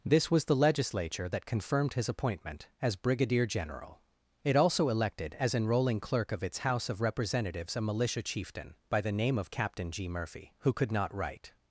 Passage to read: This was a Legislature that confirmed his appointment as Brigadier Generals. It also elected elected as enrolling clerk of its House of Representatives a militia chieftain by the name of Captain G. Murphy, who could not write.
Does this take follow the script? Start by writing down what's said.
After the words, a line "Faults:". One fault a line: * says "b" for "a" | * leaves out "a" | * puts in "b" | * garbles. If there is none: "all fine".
This was the Legislature that confirmed his appointment as Brigadier General. It also elected as enrolling clerk of its House of Representatives a militia chieftain by the name of Captain G. Murphy, who could not write.
Faults:
* says "the" for "a"
* says "General" for "Generals"
* leaves out "elected"